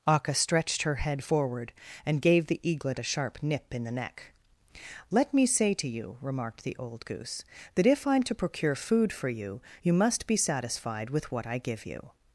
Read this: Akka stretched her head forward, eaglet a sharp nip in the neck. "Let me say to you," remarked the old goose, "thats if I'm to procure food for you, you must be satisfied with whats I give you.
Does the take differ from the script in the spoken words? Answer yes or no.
yes